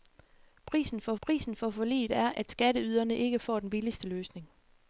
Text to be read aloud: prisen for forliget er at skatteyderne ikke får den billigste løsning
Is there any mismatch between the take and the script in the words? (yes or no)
yes